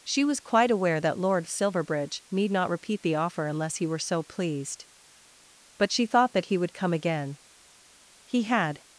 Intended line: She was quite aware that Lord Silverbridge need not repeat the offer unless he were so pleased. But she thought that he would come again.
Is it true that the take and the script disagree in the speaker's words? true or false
true